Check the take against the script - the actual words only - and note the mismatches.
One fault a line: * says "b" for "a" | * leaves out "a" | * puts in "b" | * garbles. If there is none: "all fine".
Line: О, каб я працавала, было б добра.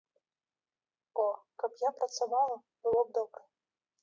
all fine